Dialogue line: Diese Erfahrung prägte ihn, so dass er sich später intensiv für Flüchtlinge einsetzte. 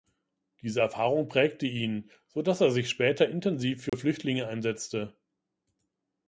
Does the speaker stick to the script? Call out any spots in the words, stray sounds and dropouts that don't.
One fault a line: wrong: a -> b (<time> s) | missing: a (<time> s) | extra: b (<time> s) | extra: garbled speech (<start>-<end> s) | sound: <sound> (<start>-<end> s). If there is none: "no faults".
sound: dropout (3.9-3.9 s)